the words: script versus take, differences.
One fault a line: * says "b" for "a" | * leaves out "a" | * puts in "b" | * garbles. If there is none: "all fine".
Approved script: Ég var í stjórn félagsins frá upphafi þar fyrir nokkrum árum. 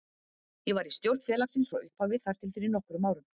* puts in "til"